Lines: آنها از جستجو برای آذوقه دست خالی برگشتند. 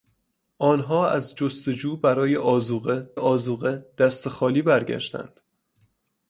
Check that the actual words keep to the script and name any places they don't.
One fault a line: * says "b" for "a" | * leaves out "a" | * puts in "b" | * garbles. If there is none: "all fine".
* puts in "آذوقه"